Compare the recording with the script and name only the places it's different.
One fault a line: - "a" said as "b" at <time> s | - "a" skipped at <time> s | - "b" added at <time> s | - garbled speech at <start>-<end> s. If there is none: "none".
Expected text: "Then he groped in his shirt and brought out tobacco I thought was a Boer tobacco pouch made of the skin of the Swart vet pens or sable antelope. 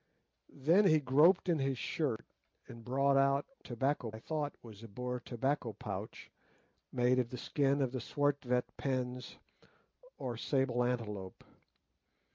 none